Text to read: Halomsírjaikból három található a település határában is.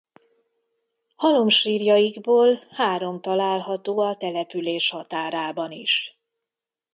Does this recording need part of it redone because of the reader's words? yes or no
no